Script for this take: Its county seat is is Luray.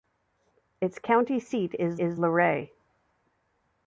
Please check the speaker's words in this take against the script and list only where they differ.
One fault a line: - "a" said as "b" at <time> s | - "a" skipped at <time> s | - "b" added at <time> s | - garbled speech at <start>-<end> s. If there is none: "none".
none